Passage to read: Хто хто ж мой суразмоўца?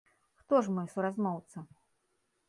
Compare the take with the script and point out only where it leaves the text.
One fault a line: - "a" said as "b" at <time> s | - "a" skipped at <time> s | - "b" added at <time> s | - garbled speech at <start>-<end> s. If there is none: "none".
- "хто" skipped at 0.6 s